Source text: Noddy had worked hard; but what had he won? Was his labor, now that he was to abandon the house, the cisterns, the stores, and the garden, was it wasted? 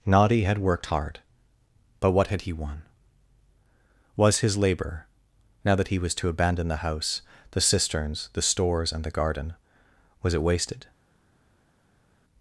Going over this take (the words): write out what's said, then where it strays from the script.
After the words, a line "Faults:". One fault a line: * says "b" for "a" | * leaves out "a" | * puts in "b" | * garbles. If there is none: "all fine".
Noddy had worked hard; but what had he won? Was his labor, now that he was to abandon the house, the cisterns, the stores, and the garden, was it wasted?
Faults:
all fine